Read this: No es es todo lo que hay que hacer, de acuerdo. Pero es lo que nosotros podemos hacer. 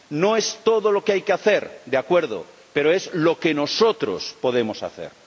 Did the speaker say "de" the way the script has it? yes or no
yes